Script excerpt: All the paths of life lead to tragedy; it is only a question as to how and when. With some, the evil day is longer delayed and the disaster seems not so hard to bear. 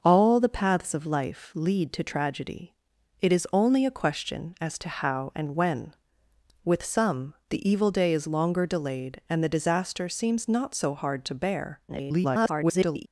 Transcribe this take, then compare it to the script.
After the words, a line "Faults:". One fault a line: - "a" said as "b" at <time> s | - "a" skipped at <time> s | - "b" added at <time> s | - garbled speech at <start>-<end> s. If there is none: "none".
All the paths of life lead to tragedy; it is only a question as to how and when. With some, the evil day is longer delayed and the disaster seems not so hard to bear. [garbled]
Faults:
- garbled speech at 11.9-13.1 s